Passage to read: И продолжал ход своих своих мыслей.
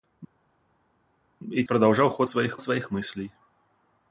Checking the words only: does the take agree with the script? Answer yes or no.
yes